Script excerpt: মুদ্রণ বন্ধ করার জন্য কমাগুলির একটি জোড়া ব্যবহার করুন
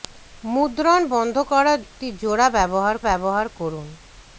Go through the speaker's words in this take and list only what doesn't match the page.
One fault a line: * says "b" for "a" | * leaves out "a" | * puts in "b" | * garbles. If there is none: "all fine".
* leaves out "জন্য কমাগুলির"
* puts in "ব্যবহার"